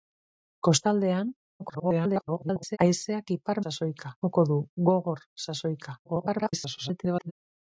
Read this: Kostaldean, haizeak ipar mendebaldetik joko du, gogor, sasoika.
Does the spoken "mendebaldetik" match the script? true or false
false